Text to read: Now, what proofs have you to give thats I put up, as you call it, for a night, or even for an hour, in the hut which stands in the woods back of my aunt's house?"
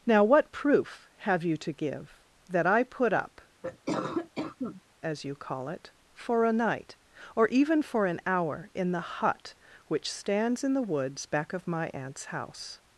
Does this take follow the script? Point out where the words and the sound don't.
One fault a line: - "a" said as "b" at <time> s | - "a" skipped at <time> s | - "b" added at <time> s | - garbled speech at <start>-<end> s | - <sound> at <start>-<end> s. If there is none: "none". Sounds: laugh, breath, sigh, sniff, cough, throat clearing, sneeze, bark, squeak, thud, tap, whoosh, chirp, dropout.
- "proofs" said as "proof" at 0.5 s
- "thats" said as "that" at 2.5 s
- cough at 3.6-4.8 s